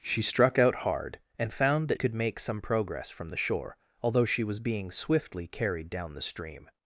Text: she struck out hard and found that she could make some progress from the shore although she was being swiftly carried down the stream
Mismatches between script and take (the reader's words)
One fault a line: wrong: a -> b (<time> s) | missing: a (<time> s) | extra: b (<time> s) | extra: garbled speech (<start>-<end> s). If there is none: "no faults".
missing: she (2.0 s)